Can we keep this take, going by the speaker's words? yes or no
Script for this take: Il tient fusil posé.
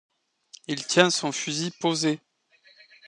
no